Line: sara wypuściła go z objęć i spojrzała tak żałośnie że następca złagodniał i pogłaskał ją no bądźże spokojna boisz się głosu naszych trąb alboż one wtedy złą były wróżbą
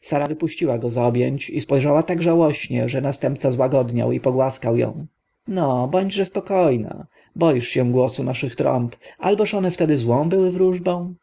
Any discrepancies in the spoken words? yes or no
no